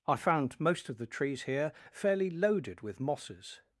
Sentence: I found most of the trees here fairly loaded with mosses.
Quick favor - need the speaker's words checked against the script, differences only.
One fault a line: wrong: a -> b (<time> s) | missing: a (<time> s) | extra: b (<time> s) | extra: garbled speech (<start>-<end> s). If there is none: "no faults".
no faults